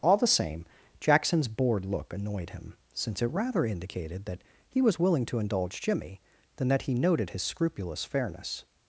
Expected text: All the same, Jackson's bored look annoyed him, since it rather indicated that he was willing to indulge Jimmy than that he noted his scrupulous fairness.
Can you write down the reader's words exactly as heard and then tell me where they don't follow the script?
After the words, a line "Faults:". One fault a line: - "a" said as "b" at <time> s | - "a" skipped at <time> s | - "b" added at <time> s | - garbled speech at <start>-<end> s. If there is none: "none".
All the same, Jackson's bored look annoyed him, since it rather indicated that he was willing to indulge Jimmy than that he noted his scrupulous fairness.
Faults:
none